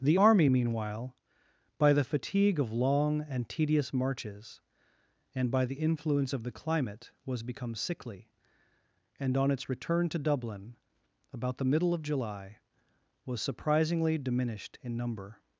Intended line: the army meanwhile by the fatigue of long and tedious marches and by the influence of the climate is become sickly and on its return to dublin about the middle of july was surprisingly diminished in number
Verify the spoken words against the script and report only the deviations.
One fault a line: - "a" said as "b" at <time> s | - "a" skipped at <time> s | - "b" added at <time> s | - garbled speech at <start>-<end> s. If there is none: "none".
- "is" said as "was" at 7.2 s